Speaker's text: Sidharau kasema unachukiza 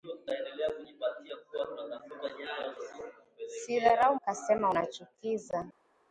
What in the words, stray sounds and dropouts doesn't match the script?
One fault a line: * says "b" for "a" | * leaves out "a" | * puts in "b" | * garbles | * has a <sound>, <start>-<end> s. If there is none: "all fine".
all fine